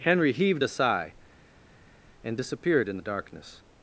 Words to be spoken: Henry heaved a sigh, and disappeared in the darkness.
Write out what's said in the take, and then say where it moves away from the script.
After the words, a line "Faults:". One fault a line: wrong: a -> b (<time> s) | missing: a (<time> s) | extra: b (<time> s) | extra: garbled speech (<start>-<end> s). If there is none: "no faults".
Henry heaved a sigh, and disappeared in the darkness.
Faults:
no faults